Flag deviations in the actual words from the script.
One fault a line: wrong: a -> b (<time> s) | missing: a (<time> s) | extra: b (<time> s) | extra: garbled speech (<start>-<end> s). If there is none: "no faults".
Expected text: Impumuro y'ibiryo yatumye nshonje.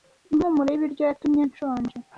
no faults